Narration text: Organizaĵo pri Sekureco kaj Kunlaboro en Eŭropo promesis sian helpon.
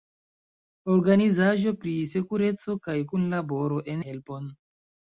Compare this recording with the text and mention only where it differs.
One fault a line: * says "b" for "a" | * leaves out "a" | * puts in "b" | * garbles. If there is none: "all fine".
* leaves out "Eŭropo promesis sian"